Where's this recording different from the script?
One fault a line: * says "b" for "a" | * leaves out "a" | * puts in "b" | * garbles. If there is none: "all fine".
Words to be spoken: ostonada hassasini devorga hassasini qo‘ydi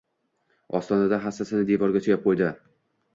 * says "suyab" for "hassasini"